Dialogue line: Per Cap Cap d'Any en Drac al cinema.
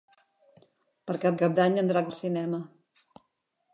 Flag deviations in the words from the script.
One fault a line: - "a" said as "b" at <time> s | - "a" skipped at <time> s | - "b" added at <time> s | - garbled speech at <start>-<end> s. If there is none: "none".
none